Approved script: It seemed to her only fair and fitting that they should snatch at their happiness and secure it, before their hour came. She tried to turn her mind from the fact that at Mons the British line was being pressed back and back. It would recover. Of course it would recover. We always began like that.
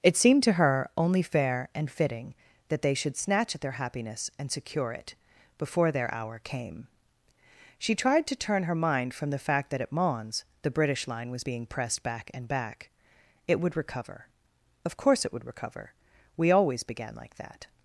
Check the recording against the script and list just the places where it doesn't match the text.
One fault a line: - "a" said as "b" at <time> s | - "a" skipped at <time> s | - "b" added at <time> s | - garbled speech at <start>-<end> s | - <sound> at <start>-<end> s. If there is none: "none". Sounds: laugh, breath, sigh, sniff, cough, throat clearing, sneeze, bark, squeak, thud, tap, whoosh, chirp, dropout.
none